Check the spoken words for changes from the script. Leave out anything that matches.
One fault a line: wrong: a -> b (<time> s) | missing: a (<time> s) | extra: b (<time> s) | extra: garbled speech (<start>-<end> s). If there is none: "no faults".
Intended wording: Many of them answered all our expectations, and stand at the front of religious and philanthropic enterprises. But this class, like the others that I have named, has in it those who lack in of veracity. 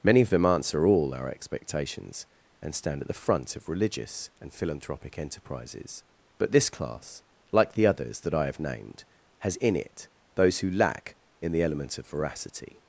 wrong: answered -> answer (0.5 s)
extra: the element (11.5 s)